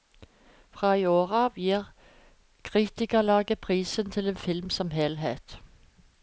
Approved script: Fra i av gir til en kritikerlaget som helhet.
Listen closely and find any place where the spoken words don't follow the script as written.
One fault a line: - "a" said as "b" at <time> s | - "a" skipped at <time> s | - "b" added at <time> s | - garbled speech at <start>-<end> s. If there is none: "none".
- "år" added at 1.1 s
- "kritikerlaget prisen" added at 2.6 s
- "kritikerlaget" said as "film" at 4.5 s